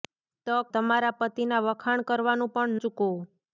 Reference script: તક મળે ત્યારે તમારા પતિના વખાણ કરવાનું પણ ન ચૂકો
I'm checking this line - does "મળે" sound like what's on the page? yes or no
no